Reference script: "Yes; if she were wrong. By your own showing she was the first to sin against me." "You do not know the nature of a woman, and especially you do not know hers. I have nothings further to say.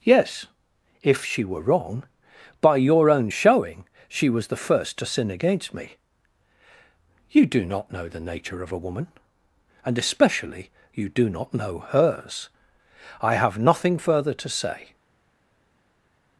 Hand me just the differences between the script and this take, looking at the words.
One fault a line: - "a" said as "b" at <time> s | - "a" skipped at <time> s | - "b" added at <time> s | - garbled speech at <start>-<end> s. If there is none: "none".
- "nothings" said as "nothing" at 13.6 s